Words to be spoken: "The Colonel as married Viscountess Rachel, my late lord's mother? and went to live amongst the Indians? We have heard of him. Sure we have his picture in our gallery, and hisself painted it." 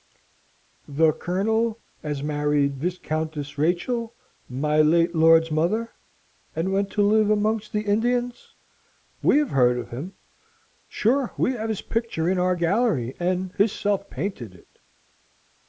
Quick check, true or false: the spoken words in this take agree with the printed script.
true